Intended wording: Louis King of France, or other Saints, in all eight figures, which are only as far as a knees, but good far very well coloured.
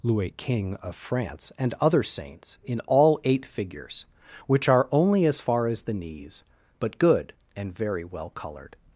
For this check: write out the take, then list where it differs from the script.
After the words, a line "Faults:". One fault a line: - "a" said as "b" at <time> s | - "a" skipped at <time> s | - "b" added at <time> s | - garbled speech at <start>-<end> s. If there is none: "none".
Louis King of France, and other Saints, in all eight figures, which are only as far as the knees, but good and very well coloured.
Faults:
- "or" said as "and" at 1.6 s
- "a" said as "the" at 5.8 s
- "far" said as "and" at 7.5 s